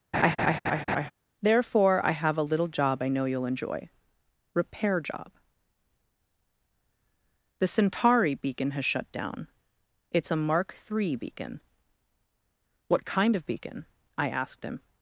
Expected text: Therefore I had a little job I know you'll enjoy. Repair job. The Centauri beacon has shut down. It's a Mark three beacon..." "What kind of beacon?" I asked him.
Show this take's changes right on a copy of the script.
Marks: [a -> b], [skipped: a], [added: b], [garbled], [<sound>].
[laugh] Therefore I [had -> have] a little job I know you'll enjoy. Repair job. The Centauri beacon has shut down. It's a Mark three beacon..." "What kind of beacon?" I asked him.